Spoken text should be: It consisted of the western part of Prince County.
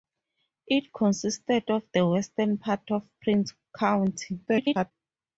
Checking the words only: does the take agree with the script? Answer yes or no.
no